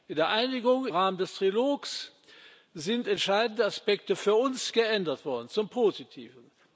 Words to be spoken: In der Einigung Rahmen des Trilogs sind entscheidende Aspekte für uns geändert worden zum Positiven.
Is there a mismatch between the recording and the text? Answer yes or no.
no